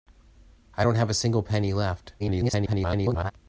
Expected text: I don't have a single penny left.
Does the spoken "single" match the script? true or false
true